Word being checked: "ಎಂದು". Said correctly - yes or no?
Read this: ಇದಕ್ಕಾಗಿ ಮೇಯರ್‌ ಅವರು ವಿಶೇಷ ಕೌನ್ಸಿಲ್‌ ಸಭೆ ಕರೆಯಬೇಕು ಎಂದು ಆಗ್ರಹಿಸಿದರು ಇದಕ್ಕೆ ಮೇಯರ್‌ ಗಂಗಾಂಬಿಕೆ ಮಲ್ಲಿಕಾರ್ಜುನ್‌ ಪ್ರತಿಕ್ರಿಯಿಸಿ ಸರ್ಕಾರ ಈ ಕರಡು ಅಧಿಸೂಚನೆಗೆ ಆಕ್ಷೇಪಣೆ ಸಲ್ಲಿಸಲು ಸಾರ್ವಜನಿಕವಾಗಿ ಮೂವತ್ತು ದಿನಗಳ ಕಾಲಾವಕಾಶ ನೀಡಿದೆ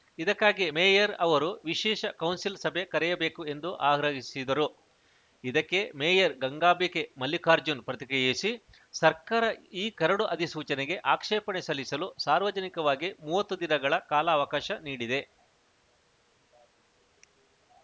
yes